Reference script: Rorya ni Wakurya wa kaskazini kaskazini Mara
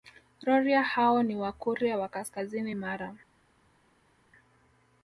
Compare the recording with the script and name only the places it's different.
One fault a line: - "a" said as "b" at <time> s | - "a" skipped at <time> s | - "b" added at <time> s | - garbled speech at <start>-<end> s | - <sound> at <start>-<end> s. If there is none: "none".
- "hao" added at 0.8 s
- "kaskazini" skipped at 2.8 s